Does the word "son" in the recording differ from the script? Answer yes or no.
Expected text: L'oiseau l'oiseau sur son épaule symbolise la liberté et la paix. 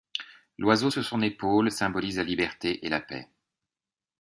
no